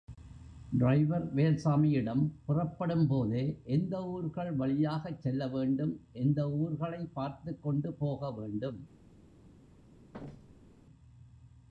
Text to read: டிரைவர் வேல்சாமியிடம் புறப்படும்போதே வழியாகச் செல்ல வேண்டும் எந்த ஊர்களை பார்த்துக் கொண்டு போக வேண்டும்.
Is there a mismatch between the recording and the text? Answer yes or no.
yes